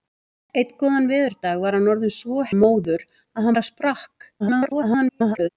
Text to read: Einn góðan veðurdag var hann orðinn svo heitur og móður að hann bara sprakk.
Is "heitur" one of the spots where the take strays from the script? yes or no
yes